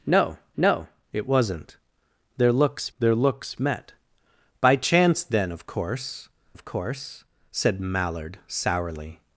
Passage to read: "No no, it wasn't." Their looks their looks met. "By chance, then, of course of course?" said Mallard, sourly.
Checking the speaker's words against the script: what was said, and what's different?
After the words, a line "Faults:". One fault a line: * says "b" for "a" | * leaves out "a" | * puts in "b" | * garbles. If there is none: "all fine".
"No no, it wasn't." Their looks their looks met. "By chance, then, of course of course?" said Mallard, sourly.
Faults:
all fine